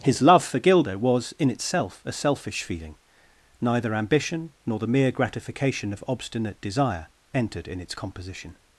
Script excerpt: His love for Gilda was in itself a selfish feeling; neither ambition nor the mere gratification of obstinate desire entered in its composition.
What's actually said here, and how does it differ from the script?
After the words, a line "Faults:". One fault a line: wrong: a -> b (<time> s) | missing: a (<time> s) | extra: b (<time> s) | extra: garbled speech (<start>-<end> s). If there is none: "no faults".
His love for Gilda was in itself a selfish feeling; neither ambition nor the mere gratification of obstinate desire entered in its composition.
Faults:
no faults